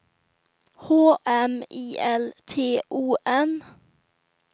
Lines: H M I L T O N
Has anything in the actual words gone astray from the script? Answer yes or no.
no